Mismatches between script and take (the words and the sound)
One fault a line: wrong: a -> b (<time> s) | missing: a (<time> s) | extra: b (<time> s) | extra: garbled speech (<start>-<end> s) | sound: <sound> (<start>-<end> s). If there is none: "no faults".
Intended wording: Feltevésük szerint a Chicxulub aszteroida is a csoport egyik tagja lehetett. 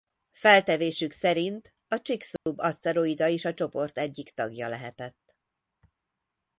sound: dropout (2.4-2.5 s)